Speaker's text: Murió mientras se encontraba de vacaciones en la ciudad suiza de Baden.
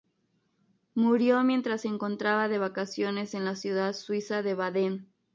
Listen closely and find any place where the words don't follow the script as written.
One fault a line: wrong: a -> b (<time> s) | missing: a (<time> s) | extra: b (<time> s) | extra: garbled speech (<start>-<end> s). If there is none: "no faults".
no faults